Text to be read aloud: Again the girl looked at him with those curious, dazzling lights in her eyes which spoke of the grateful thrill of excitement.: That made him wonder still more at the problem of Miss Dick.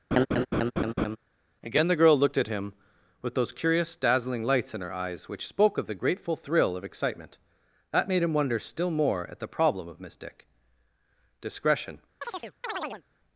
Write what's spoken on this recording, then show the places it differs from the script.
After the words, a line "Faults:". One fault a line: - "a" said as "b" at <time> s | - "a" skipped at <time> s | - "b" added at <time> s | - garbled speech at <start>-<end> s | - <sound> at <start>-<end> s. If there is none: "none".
Again the girl looked at him with those curious, dazzling lights in her eyes which spoke of the grateful thrill of excitement.: That made him wonder still more at the problem of Miss Dick. Discretion
Faults:
- laugh at 0.1-1.2 s
- "Discretion" added at 11.4 s
- chirp at 12.2-13.0 s